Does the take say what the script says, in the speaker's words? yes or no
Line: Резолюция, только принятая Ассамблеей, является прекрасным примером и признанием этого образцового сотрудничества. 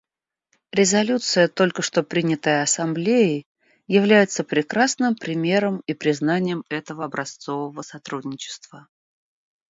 no